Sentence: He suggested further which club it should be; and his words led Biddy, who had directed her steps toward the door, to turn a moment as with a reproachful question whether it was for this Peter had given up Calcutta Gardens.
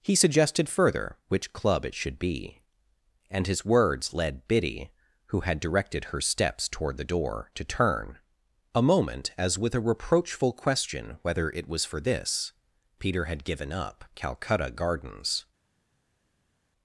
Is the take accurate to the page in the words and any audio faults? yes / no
yes